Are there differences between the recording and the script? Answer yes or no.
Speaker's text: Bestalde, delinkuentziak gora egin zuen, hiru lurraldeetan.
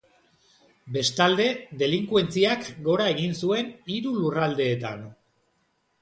no